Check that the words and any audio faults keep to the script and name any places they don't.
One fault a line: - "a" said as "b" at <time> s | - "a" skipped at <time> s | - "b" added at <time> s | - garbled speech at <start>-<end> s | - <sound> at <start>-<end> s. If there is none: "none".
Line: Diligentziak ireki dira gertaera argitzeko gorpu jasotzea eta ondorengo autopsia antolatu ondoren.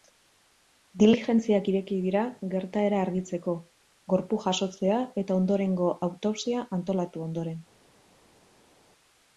none